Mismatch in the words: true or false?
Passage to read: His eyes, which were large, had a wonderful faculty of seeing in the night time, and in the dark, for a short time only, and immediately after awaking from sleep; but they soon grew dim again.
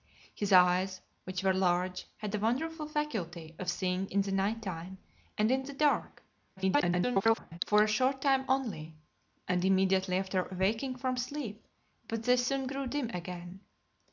true